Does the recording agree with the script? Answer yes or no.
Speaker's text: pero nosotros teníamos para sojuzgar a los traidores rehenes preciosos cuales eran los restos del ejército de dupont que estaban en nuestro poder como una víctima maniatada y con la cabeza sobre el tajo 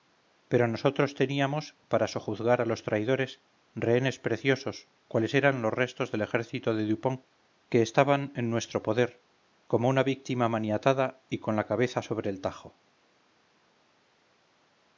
yes